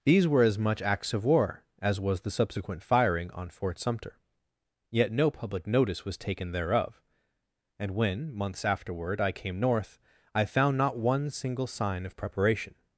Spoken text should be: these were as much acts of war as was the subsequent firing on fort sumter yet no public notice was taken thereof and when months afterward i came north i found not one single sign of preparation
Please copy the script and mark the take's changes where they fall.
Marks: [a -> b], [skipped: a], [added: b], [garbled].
these were as much acts of war as was the subsequent firing on fort sumter yet no public notice was taken thereof and when months afterward i came north i found not one single sign of preparation